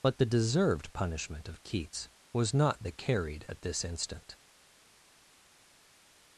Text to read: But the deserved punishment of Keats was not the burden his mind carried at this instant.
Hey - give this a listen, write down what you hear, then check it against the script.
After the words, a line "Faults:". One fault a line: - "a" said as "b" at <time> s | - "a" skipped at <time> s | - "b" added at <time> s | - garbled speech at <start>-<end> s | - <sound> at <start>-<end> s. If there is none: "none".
But the deserved punishment of Keats was not the carried at this instant.
Faults:
- "burden his mind" skipped at 2.9 s